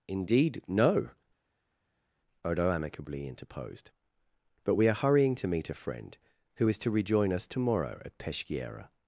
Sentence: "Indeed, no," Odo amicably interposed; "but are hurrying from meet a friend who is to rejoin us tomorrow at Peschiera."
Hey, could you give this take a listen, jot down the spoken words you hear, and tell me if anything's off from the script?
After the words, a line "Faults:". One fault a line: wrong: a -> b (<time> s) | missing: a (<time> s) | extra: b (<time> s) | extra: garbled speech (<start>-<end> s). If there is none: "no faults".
"Indeed, no," Odo amicably interposed; "but we are hurrying to meet a friend who is to rejoin us tomorrow at Peschiera."
Faults:
extra: we (4.7 s)
wrong: from -> to (5.4 s)